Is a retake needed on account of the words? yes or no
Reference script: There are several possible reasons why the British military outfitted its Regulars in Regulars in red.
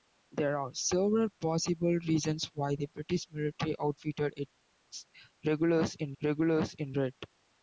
no